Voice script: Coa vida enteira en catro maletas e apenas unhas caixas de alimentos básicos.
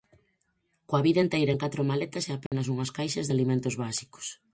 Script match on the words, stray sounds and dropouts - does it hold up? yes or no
no